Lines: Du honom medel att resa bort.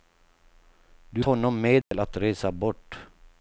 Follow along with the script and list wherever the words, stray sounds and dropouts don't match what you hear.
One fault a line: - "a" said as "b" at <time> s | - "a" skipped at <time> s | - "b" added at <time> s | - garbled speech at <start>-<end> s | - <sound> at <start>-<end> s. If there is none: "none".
- dropout at 1.8-1.9 s